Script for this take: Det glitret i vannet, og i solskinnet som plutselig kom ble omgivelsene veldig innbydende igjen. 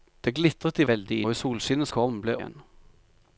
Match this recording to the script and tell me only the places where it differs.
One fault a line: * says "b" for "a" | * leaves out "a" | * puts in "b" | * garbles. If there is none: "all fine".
* says "veldig" for "vannet"
* leaves out "som plutselig"
* leaves out "omgivelsene veldig innbydende"